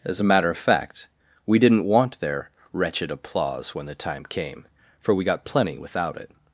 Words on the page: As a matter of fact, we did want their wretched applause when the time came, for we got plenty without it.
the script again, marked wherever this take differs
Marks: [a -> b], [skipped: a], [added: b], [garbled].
As a matter of fact, we [did -> didn't] want their wretched applause when the time came, for we got plenty without it.